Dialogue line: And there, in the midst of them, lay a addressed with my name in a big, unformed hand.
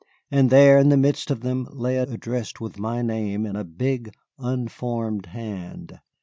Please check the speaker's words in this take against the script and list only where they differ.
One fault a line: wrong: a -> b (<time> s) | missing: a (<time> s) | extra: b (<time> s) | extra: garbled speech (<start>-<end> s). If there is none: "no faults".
no faults